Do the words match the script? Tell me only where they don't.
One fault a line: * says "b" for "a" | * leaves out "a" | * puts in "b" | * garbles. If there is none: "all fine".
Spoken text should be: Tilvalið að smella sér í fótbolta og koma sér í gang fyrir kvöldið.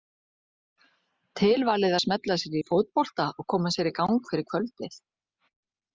all fine